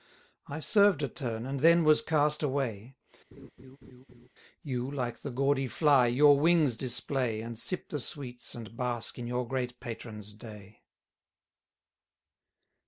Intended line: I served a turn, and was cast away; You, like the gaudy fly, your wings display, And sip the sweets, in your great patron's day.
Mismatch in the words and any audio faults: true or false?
true